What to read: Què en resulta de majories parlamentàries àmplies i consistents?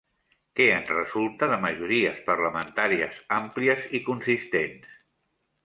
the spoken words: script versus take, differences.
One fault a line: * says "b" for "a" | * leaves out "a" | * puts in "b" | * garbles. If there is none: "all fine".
all fine